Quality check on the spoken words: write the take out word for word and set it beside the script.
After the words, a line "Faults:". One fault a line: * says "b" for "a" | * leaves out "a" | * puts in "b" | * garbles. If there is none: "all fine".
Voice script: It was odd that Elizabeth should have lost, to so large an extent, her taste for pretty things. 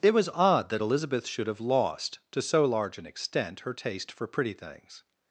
It was odd that Elizabeth should have lost, to so large an extent, her taste for pretty things.
Faults:
all fine